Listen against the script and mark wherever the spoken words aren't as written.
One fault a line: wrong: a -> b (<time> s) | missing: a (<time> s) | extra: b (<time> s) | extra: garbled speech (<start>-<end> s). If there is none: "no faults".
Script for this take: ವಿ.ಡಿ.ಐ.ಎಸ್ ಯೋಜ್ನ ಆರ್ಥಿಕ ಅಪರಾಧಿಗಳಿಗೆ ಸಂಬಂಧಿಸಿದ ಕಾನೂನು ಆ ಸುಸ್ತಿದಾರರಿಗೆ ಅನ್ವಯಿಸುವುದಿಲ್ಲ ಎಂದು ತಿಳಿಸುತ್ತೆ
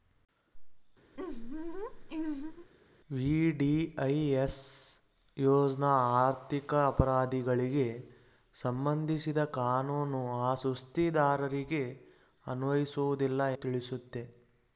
missing: ಎಂದು (13.4 s)